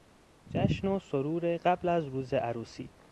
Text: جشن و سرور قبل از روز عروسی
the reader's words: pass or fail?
pass